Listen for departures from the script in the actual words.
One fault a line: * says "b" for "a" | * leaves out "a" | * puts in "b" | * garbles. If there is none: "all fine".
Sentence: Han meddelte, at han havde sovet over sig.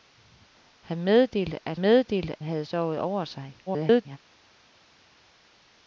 * says "meddelte" for "han"
* garbles